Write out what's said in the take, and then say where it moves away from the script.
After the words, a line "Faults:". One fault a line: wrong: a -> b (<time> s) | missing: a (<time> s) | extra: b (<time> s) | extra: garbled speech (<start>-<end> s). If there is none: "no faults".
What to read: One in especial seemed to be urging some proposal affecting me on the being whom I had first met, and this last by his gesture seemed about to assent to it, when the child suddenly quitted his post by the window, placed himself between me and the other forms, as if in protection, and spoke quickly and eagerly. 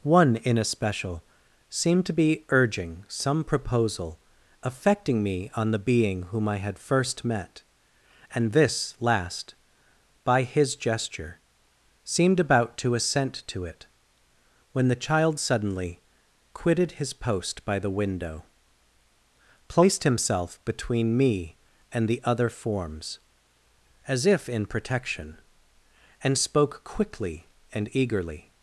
One in especial seemed to be urging some proposal affecting me on the being whom I had first met, and this last by his gesture seemed about to assent to it, when the child suddenly quitted his post by the window, placed himself between me and the other forms, as if in protection, and spoke quickly and eagerly.
Faults:
no faults